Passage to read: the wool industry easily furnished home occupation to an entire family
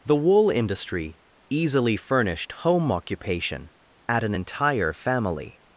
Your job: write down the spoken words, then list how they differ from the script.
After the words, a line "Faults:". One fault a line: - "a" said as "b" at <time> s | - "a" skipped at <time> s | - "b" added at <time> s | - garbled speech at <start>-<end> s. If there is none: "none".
the wool industry easily furnished home occupation at an entire family
Faults:
- "to" said as "at" at 4.1 s